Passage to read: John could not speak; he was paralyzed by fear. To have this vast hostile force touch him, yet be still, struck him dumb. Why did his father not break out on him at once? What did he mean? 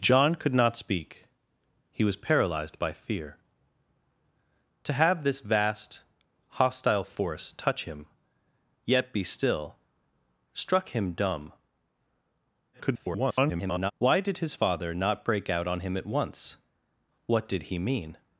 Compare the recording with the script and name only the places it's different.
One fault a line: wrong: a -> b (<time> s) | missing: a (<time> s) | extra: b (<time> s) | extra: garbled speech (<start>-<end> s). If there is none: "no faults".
extra: garbled speech (12.7-13.9 s)